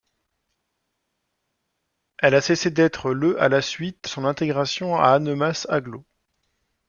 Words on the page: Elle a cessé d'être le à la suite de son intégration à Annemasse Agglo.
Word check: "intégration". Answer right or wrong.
right